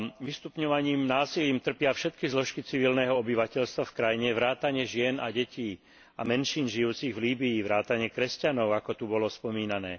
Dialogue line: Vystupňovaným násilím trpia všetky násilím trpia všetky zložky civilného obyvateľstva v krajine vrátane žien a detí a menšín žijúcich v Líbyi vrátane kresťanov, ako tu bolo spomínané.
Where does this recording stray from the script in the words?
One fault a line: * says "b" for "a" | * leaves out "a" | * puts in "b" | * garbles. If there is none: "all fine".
* leaves out "násilím trpia všetky"